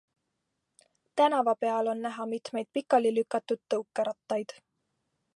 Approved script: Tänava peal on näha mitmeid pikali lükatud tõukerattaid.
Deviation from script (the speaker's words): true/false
false